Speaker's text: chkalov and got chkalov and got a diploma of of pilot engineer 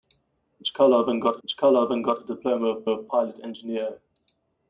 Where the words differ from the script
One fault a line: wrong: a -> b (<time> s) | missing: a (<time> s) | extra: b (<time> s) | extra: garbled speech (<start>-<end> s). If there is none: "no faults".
no faults